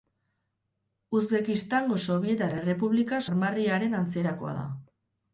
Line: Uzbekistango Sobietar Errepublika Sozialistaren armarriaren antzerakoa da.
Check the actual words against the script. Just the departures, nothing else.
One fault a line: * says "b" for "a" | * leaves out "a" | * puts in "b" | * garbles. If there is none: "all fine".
* leaves out "Sozialistaren"